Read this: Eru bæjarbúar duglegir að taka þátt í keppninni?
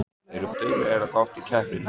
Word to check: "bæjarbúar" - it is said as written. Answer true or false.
false